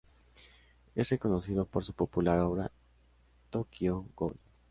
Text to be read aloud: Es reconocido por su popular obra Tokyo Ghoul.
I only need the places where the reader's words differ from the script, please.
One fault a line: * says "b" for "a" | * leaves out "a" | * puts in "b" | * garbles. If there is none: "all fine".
all fine